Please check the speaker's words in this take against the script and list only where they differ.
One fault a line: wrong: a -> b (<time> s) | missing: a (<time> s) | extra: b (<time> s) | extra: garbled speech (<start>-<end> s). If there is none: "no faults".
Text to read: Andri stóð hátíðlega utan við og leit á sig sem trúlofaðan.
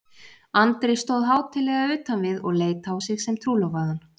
no faults